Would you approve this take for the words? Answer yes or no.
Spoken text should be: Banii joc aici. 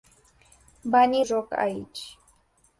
yes